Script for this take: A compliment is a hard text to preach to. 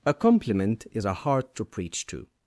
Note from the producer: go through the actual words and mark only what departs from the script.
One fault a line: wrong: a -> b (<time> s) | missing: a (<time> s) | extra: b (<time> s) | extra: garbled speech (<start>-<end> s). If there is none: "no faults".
missing: text (1.6 s)